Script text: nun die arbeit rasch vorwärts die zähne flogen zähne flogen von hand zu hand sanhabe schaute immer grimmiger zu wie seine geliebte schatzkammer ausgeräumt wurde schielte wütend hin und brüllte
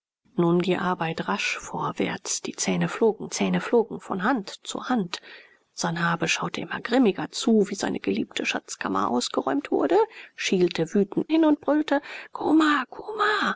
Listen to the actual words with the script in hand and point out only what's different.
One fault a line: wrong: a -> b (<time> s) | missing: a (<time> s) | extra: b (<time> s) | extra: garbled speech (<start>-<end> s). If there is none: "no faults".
no faults